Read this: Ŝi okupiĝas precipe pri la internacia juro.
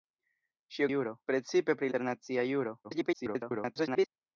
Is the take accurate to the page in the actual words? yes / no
no